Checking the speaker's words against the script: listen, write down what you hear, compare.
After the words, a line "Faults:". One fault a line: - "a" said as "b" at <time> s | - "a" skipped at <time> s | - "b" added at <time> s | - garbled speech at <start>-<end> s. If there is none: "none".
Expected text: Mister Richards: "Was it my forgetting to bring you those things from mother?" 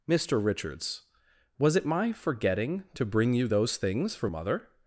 Mister Richards: "Was it my forgetting to bring you those things from mother?"
Faults:
none